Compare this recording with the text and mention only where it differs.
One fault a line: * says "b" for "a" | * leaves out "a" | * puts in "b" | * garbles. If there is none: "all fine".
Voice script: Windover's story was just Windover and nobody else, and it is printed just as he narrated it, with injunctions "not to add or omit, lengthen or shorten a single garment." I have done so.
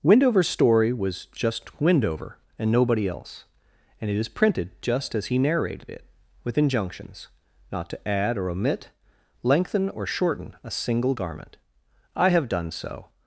all fine